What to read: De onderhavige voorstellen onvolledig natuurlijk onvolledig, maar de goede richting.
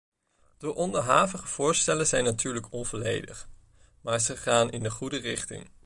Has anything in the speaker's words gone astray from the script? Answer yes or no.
yes